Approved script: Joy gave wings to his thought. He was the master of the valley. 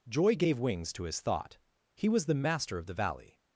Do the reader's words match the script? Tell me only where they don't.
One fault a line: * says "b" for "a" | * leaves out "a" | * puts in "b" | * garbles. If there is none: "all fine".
all fine